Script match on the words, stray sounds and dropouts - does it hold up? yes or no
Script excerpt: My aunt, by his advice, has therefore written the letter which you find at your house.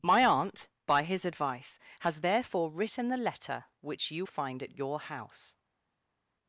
yes